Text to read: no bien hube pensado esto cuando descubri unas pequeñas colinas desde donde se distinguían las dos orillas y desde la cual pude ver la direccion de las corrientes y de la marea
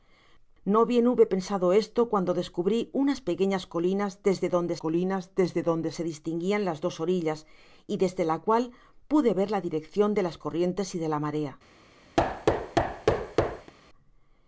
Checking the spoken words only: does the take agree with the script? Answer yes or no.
no